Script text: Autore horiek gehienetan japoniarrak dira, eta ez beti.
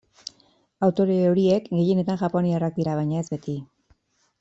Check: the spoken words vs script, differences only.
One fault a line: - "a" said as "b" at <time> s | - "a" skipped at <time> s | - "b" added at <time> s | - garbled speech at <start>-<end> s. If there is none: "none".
- "eta" said as "baina" at 3.0 s